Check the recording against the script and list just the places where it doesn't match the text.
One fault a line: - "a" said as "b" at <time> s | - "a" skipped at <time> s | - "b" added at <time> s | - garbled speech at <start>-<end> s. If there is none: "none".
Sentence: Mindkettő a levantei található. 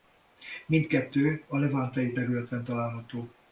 - "területen" added at 2.1 s